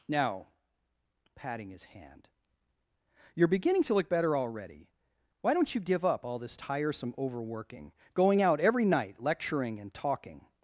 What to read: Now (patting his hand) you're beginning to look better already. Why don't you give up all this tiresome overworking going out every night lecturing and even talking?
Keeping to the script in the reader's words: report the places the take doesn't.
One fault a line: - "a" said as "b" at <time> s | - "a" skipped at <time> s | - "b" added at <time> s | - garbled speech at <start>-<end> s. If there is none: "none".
- "even" skipped at 9.9 s